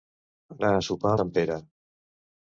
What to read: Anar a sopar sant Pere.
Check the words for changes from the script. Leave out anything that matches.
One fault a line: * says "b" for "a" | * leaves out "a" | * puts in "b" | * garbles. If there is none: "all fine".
all fine